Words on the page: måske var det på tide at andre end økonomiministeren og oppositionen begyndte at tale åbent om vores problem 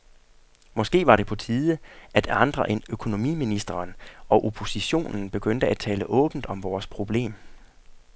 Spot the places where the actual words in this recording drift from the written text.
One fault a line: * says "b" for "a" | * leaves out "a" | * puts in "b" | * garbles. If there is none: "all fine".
all fine